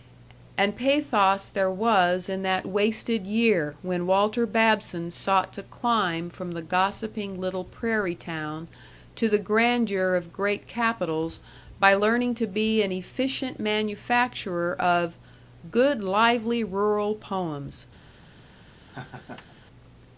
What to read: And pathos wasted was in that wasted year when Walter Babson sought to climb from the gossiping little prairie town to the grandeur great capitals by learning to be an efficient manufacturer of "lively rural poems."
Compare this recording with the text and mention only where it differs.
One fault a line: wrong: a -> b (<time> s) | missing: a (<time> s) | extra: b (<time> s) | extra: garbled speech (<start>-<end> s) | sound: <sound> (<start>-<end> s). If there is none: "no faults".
wrong: wasted -> there (1.5 s)
extra: of (10.2 s)
extra: good (15.7 s)
sound: laugh (18.9-19.6 s)